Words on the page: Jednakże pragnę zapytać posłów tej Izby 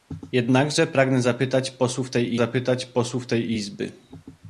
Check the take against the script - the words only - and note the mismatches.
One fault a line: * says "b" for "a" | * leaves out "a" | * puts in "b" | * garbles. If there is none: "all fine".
* puts in "zapytać posłów tej"